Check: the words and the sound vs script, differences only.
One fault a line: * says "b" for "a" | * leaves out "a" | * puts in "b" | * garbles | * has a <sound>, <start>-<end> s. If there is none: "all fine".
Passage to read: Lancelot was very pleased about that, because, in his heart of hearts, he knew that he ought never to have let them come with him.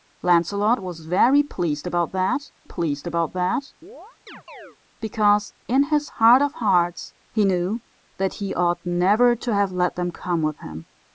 * puts in "pleased about that"
* has a chirp, 3.8-4.8 s